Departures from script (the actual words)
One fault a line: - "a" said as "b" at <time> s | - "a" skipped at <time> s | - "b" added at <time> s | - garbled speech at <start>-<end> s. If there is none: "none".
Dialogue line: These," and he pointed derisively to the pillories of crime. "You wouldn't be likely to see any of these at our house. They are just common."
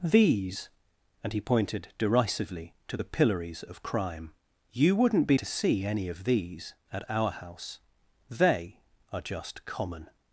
- "likely" skipped at 5.4 s